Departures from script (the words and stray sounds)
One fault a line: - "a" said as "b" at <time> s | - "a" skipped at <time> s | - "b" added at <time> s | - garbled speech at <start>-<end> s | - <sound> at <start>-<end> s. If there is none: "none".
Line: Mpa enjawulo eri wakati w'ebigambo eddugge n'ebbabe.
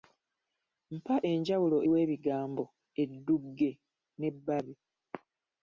- "eri wakati" skipped at 1.8 s